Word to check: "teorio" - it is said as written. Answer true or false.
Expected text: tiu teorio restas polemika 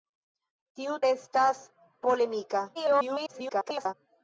false